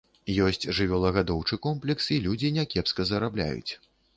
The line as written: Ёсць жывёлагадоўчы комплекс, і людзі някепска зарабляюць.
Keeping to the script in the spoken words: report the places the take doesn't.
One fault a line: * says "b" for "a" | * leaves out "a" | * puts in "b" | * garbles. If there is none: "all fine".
all fine